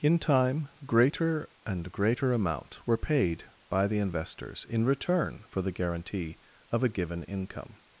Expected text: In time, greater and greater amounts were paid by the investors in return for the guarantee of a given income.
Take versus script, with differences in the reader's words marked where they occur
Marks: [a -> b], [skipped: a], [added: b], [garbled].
In time, greater and greater [amounts -> amount] were paid by the investors in return for the guarantee of a given income.